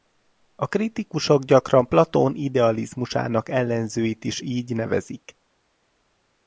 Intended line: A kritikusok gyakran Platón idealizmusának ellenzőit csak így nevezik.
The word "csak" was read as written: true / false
false